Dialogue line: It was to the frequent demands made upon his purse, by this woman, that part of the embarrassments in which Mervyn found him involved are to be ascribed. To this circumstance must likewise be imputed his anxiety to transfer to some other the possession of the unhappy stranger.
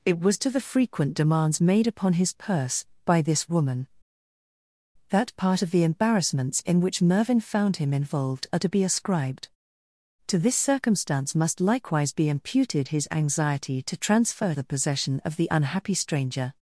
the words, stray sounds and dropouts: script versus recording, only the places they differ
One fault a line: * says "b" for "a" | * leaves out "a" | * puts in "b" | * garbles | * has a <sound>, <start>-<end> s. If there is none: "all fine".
* leaves out "to some other"